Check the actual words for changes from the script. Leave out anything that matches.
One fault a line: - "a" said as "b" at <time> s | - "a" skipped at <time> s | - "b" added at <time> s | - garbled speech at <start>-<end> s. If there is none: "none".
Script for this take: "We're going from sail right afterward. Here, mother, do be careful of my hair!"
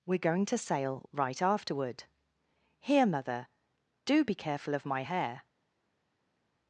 - "from" said as "to" at 0.5 s